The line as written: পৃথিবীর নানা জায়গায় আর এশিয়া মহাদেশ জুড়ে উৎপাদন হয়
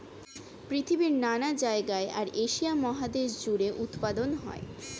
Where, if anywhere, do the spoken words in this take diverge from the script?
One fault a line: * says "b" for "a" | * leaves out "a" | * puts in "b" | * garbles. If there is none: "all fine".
all fine